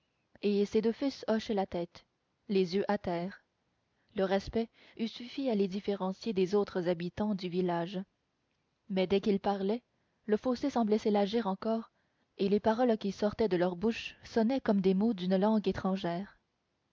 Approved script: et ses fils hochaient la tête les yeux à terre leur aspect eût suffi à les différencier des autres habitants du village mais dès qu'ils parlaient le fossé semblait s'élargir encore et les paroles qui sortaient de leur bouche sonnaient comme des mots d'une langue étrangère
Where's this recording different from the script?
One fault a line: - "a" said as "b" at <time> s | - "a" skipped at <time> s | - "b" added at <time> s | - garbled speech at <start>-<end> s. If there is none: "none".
- "deux" added at 0.8 s